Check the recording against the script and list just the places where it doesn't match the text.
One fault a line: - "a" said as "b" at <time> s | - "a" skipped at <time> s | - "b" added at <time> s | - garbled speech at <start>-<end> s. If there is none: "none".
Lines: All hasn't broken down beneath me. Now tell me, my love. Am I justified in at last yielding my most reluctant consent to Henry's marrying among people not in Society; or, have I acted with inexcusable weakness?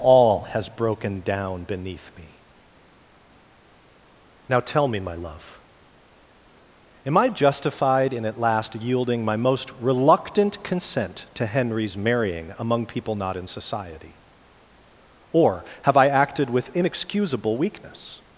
- "hasn't" said as "has" at 0.4 s